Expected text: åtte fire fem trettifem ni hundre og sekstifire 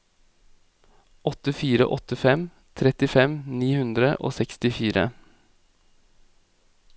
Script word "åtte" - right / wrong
right